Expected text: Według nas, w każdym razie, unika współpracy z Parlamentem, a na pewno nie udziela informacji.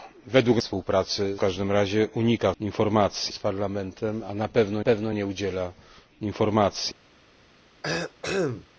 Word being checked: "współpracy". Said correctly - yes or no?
no